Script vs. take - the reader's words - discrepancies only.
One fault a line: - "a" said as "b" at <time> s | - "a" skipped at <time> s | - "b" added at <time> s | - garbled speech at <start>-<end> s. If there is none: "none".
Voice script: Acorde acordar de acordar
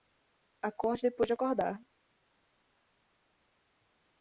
- "acordar" said as "depois" at 1.0 s